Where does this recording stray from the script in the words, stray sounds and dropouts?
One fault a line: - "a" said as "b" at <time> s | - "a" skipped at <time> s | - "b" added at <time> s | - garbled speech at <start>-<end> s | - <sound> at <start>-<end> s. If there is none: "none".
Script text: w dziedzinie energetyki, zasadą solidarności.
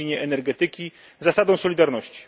none